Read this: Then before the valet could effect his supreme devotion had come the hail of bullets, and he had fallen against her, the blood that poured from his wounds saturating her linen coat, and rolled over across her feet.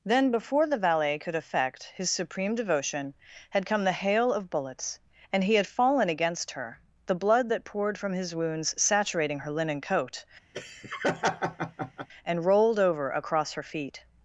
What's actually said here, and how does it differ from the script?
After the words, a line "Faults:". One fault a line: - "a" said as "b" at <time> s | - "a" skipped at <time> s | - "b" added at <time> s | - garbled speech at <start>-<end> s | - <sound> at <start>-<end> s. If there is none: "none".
Then before the valet could effect his supreme devotion had come the hail of bullets, and he had fallen against her, the blood that poured from his wounds saturating her linen coat, and rolled over across her feet.
Faults:
- laugh at 10.5-12.1 s